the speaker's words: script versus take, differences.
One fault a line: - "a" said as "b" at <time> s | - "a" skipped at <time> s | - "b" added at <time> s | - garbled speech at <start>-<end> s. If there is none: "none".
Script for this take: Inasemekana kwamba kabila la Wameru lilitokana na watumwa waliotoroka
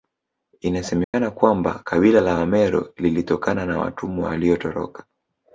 none